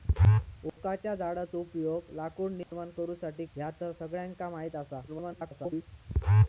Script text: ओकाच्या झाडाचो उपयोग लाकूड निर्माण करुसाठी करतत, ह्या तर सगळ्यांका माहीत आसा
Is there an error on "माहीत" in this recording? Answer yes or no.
no